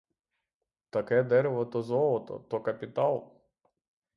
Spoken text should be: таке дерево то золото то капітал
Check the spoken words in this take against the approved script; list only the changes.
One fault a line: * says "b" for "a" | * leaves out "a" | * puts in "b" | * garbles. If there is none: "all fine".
all fine